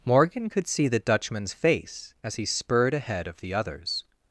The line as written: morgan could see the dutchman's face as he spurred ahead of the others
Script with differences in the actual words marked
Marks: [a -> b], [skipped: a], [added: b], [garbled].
morgan could see the dutchman's face as he spurred ahead of the others